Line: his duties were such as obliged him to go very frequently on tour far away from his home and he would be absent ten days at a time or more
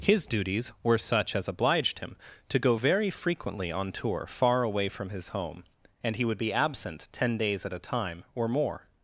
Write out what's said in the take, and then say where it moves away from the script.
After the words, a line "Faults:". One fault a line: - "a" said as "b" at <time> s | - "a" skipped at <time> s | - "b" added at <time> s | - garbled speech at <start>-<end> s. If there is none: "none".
his duties were such as obliged him to go very frequently on tour far away from his home and he would be absent ten days at a time or more
Faults:
none